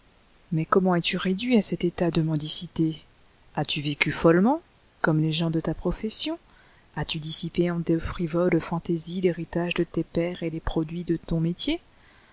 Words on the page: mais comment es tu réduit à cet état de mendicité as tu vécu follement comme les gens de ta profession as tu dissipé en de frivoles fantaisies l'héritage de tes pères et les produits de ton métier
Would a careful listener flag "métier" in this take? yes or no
no